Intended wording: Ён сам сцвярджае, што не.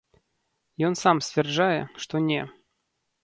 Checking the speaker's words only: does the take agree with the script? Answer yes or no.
yes